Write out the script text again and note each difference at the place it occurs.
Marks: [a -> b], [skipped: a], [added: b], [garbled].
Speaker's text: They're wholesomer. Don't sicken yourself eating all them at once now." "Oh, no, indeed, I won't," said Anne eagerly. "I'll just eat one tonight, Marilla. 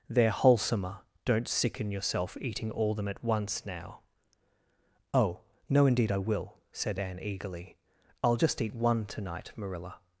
They're wholesomer. Don't sicken yourself eating all them at once now." "Oh, no, indeed, I [won't," -> will] said Anne eagerly. "I'll just eat one tonight, Marilla.